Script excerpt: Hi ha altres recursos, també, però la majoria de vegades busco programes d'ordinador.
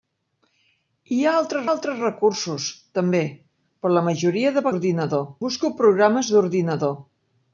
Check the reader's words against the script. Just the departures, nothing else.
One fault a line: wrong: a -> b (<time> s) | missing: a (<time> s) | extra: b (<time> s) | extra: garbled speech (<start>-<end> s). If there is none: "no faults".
extra: altres (1.7 s)
wrong: vegades -> d'ordinador (4.7 s)